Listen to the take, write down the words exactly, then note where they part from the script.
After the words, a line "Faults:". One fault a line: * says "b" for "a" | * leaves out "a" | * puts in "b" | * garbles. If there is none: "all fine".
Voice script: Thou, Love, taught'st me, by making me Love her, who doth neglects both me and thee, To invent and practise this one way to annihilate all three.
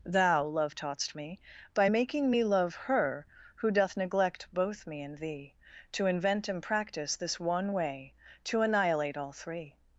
Thou, Love, taught'st me, by making me Love her, who doth neglect both me and thee, To invent and practise this one way to annihilate all three.
Faults:
* says "neglect" for "neglects"